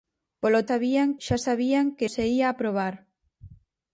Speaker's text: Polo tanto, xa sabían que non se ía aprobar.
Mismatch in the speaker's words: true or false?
true